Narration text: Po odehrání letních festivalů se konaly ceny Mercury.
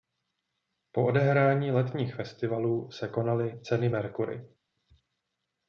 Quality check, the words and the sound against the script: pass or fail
pass